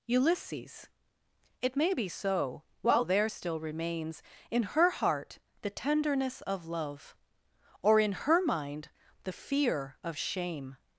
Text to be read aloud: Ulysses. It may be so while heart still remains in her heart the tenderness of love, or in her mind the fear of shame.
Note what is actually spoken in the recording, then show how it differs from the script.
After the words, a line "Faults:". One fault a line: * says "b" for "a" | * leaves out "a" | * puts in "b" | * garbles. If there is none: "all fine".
Ulysses. It may be so while there still remains in her heart the tenderness of love, or in her mind the fear of shame.
Faults:
* says "there" for "heart"